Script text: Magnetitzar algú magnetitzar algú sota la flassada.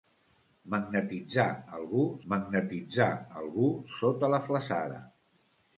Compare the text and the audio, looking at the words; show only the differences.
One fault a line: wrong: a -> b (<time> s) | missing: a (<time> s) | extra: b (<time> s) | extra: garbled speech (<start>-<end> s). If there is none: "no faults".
no faults